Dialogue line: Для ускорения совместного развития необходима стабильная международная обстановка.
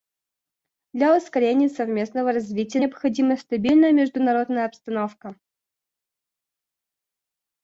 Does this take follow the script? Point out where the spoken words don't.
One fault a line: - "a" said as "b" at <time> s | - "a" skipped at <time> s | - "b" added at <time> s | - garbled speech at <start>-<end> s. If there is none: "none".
none